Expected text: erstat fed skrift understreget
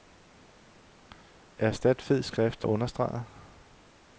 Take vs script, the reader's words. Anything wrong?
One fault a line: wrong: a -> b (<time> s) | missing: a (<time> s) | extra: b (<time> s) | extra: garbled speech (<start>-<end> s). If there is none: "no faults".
no faults